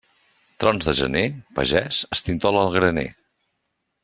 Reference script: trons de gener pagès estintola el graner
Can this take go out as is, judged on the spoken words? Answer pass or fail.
pass